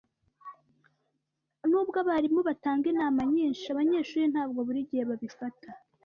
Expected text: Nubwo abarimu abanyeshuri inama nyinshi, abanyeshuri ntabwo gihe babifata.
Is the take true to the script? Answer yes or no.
no